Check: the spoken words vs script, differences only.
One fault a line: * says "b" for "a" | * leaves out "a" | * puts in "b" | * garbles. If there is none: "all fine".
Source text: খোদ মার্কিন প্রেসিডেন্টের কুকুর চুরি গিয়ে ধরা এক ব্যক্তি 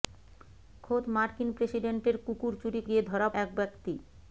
all fine